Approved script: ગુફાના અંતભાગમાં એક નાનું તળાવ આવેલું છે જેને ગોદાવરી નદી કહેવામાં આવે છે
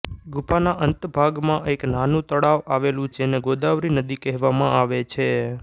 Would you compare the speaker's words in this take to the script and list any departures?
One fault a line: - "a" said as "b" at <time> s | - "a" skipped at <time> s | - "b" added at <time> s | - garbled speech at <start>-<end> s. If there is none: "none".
- "છે" skipped at 3.1 s